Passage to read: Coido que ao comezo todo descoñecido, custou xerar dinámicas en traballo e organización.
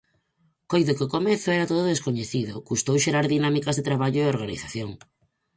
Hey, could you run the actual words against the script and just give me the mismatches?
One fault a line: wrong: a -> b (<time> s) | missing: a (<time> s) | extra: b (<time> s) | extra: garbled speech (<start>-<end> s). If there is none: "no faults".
extra: era (1.6 s)
wrong: en -> de (3.8 s)